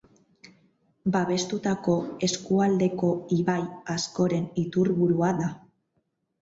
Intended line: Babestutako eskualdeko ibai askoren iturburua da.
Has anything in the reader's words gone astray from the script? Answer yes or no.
no